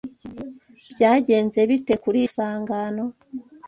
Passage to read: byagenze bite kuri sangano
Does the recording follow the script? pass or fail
pass